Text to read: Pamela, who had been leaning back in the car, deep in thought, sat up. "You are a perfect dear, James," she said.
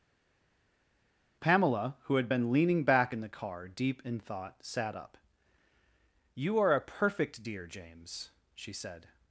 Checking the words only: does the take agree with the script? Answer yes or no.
yes